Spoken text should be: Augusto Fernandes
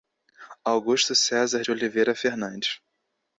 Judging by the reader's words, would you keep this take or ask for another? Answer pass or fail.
fail